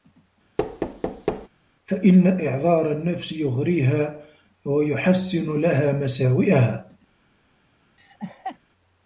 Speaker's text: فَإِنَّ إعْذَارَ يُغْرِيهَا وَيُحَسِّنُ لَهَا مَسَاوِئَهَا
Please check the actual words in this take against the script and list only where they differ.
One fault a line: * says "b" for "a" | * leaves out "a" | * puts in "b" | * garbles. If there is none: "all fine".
* puts in "النَّفْسِ"